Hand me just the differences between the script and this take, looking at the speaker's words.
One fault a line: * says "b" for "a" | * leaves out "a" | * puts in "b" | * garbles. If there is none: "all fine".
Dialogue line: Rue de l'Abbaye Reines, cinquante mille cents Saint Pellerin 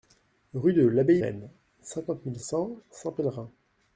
all fine